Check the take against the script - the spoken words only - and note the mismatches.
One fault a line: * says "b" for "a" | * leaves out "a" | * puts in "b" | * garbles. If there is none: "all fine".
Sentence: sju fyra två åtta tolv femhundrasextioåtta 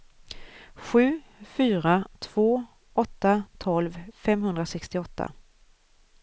all fine